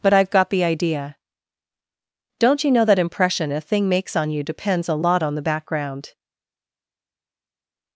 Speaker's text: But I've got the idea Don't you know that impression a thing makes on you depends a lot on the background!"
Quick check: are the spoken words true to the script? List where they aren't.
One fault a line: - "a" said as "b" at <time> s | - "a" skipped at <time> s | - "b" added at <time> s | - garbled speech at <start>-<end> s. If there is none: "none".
none